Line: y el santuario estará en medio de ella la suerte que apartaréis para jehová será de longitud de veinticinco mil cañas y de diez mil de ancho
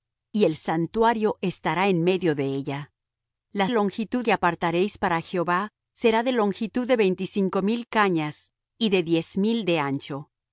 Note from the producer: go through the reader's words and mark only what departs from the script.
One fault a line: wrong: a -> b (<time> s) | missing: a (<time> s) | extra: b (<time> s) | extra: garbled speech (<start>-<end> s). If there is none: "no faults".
wrong: suerte -> longitud (3.7 s)